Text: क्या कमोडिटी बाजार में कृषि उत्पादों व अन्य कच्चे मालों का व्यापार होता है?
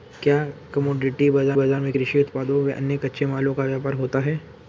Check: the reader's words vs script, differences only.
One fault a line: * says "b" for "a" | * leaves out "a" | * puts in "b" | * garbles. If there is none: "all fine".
* puts in "बाजार"